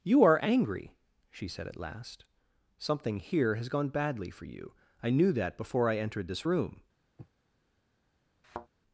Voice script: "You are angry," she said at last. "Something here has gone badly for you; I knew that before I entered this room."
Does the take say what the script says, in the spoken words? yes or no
yes